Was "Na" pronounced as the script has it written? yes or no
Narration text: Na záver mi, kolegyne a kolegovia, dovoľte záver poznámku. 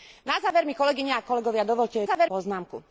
yes